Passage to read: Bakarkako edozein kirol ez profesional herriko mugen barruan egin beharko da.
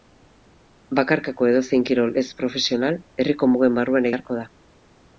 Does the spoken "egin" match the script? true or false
false